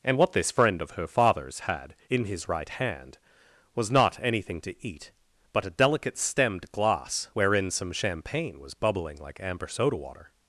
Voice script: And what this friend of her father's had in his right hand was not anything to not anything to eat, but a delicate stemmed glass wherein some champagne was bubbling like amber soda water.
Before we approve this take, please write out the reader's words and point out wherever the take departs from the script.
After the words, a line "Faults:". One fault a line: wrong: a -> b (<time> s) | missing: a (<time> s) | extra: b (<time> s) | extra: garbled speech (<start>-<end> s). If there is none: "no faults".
And what this friend of her father's had in his right hand was not anything to eat, but a delicate stemmed glass wherein some champagne was bubbling like amber soda water.
Faults:
missing: not anything to (4.8 s)